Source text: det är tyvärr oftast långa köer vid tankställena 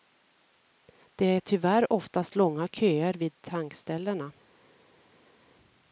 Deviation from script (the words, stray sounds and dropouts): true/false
false